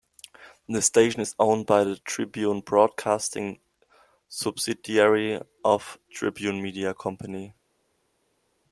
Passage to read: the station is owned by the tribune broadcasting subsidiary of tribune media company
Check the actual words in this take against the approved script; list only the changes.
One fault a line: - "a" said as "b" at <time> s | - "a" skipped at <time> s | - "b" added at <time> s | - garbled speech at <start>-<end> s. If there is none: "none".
none